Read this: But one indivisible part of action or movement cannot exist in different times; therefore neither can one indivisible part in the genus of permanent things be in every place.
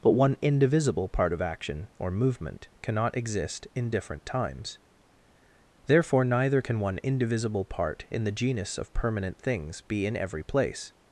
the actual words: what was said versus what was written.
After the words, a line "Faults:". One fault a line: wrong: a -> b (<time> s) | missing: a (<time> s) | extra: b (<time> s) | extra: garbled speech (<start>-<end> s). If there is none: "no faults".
But one indivisible part of action or movement cannot exist in different times; therefore neither can one indivisible part in the genus of permanent things be in every place.
Faults:
no faults